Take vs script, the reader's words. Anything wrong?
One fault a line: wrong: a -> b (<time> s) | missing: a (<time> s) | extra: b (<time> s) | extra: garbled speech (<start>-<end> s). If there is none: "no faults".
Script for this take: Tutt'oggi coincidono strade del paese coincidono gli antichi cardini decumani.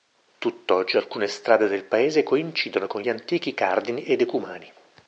wrong: coincidono -> alcune (0.9 s)
extra: con (2.9 s)
extra: e (4.0 s)